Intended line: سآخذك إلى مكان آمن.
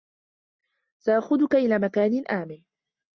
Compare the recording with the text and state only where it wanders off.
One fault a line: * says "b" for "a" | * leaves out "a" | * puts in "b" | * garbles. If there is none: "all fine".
all fine